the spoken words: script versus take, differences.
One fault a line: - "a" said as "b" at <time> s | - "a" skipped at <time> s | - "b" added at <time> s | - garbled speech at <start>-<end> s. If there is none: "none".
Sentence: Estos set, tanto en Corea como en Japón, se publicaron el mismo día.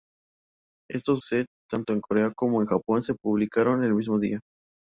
none